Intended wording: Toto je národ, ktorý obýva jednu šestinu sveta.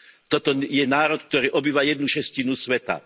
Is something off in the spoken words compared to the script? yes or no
no